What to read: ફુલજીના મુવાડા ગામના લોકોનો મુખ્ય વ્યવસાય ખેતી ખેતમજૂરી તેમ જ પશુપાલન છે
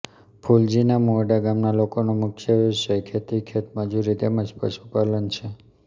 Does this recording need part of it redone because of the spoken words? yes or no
no